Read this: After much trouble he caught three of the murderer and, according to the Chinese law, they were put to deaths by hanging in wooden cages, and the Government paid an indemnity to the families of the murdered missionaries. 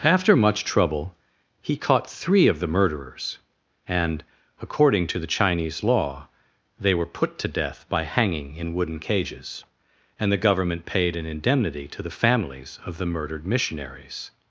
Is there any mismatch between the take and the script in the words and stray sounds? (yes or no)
yes